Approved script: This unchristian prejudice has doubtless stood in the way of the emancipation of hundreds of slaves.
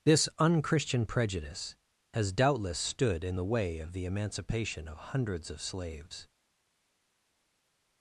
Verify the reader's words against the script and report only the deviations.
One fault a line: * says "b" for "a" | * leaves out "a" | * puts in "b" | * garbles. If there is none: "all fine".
all fine